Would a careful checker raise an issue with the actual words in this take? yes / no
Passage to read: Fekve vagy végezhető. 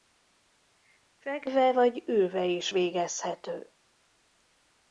yes